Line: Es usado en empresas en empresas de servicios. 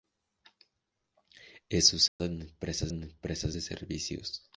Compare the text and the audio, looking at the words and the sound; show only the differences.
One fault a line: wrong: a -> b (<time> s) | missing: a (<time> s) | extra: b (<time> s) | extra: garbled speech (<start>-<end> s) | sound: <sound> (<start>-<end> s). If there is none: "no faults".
sound: dropout (2.1-2.2 s)